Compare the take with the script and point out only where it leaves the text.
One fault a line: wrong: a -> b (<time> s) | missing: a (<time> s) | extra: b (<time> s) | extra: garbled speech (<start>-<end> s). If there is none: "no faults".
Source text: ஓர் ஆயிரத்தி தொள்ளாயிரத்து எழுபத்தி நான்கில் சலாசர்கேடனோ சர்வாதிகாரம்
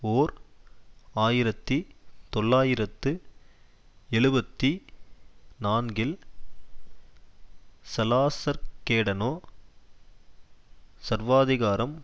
no faults